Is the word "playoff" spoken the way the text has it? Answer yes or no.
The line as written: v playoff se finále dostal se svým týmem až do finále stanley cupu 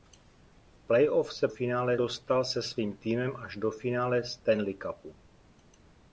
yes